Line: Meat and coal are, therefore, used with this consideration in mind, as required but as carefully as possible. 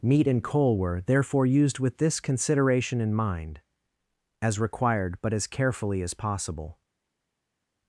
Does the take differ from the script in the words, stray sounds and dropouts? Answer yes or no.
yes